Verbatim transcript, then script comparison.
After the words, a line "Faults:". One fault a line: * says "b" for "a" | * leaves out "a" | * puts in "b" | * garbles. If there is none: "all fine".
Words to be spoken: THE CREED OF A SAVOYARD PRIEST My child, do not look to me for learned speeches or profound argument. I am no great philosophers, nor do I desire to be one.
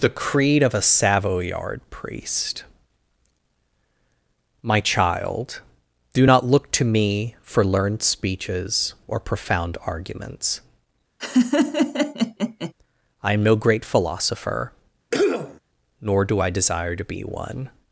THE CREED OF A SAVOYARD PRIEST My child, do not look to me for learned speeches or profound arguments. I am no great philosopher, nor do I desire to be one.
Faults:
* says "arguments" for "argument"
* says "philosopher" for "philosophers"